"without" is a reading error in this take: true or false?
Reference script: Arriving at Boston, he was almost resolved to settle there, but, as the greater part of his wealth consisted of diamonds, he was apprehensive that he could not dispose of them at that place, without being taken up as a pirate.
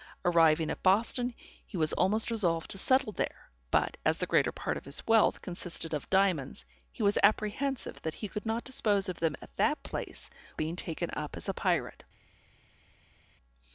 true